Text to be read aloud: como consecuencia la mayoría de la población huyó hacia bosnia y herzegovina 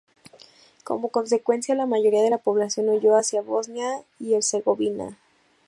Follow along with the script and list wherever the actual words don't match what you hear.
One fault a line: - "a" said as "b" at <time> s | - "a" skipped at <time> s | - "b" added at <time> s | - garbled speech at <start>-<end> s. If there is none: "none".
none